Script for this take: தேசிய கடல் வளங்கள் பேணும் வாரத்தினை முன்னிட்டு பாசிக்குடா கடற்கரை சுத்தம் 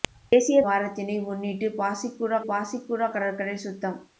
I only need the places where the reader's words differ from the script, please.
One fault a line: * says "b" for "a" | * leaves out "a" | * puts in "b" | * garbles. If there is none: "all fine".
* leaves out "கடல் வளங்கள் பேணும்"
* puts in "பாசிக்குடா"